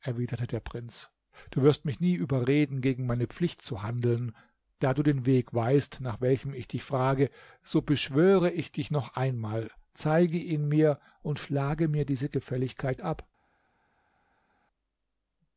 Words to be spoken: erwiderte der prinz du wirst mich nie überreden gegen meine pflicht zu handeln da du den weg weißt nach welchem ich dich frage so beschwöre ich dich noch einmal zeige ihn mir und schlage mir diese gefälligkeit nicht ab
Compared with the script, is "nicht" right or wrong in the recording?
wrong